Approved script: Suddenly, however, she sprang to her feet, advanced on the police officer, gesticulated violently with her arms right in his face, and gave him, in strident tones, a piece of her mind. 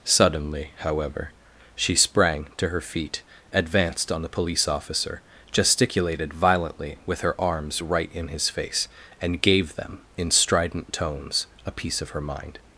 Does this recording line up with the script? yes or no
no